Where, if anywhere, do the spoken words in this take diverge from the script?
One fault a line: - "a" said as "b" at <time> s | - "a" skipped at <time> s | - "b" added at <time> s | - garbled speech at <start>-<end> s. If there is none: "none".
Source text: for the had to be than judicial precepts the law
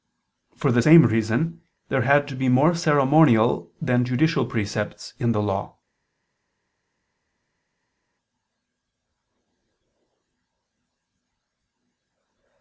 - "same reason there" added at 0.8 s
- "more ceremonial" added at 2.5 s
- "in" added at 5.2 s